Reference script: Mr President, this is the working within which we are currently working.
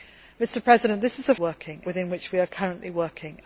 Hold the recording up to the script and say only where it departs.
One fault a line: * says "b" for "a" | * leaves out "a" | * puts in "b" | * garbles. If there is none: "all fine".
all fine